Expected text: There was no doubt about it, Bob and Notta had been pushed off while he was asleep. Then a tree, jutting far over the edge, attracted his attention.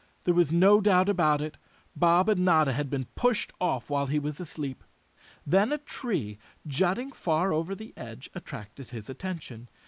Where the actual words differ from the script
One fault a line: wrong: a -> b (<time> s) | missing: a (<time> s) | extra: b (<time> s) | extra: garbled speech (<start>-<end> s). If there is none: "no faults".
no faults